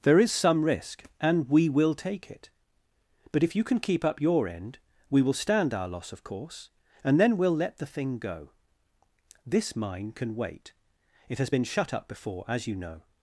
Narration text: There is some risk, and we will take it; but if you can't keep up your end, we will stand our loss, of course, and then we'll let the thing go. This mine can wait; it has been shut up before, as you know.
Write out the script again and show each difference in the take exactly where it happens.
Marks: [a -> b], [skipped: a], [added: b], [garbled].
There is some risk, and we will take it; but if you [can't -> can] keep up your end, we will stand our loss, of course, and then we'll let the thing go. This mine can wait; it has been shut up before, as you know.